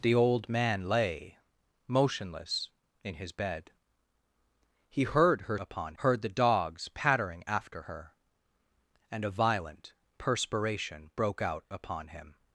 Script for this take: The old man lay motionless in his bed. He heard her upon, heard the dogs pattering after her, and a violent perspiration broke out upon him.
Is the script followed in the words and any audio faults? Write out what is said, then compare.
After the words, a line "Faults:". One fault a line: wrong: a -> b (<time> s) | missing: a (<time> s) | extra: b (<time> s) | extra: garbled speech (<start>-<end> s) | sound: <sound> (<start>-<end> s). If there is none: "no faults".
The old man lay motionless in his bed. He heard her upon, heard the dogs pattering after her, and a violent perspiration broke out upon him.
Faults:
no faults